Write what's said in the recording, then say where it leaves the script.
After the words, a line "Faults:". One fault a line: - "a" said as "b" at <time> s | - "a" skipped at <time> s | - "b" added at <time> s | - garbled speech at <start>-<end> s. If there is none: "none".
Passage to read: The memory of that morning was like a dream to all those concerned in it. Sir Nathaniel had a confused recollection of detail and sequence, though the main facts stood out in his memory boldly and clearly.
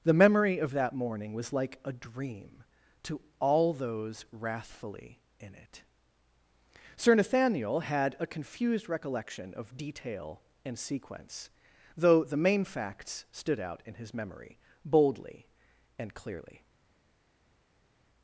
The memory of that morning was like a dream to all those wrathfully in it. Sir Nathaniel had a confused recollection of detail and sequence, though the main facts stood out in his memory boldly and clearly.
Faults:
- "concerned" said as "wrathfully" at 4.3 s